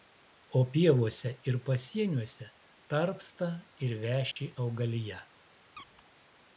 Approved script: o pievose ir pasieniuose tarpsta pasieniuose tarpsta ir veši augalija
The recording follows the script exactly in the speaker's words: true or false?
false